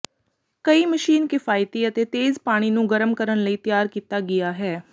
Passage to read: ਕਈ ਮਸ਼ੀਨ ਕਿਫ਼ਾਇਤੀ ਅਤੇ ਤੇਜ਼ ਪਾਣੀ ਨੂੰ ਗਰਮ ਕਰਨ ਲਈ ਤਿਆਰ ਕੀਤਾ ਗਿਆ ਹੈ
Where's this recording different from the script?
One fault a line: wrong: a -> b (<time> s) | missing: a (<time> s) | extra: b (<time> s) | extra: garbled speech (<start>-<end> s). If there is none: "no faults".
no faults